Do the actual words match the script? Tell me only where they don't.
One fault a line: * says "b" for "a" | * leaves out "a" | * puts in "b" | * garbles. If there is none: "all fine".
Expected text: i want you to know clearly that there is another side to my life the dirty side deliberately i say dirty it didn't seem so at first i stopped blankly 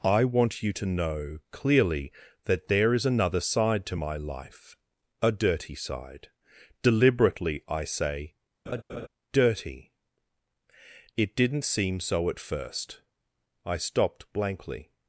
* says "a" for "the"